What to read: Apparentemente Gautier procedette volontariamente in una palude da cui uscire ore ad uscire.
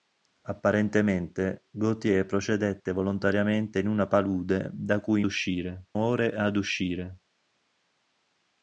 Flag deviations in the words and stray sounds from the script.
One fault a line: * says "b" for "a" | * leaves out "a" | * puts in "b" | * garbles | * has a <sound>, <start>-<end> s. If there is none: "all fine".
all fine